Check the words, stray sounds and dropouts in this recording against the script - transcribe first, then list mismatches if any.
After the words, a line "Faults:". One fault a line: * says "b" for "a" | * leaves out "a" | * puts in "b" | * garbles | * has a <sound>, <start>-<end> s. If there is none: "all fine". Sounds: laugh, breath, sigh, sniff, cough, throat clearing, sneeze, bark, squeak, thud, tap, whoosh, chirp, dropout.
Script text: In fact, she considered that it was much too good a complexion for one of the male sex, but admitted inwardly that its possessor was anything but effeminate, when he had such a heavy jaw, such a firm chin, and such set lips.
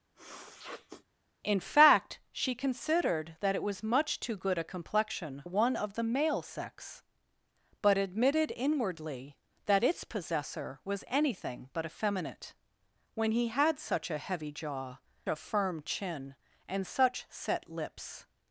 In fact, she considered that it was much too good a complexion one of the male sex, but admitted inwardly that its possessor was anything but effeminate, when he had such a heavy jaw, a firm chin, and such set lips.
Faults:
* has a sniff, 0.1-1.0 s
* leaves out "for"
* leaves out "such"